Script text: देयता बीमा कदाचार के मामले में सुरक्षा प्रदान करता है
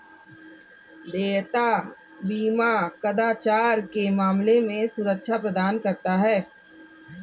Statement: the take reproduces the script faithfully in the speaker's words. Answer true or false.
true